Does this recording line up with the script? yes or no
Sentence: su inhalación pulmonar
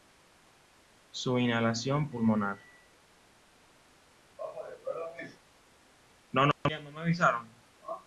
yes